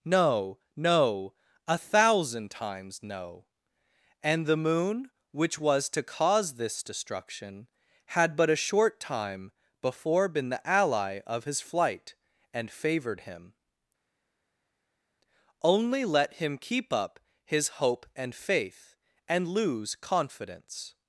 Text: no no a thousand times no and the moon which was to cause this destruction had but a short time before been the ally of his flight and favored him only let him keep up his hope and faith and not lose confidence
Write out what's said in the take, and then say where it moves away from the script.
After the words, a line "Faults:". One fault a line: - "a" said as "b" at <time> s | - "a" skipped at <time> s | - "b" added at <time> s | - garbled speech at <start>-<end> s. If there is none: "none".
no no a thousand times no and the moon which was to cause this destruction had but a short time before been the ally of his flight and favored him only let him keep up his hope and faith and lose confidence
Faults:
- "not" skipped at 19.5 s